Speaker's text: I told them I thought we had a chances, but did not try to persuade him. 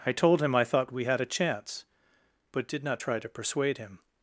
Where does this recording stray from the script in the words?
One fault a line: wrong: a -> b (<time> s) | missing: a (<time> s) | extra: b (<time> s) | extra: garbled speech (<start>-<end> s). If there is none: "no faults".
wrong: them -> him (0.4 s)
wrong: chances -> chance (1.2 s)